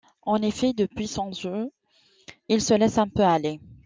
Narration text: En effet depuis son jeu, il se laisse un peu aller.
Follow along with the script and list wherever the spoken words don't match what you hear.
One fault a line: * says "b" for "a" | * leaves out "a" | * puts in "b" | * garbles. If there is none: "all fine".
all fine